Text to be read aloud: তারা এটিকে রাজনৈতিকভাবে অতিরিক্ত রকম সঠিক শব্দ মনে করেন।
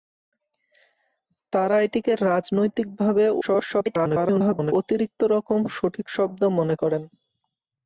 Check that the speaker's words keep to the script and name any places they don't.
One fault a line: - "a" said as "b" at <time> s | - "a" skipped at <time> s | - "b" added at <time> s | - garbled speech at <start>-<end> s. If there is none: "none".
- garbled speech at 3.4-4.7 s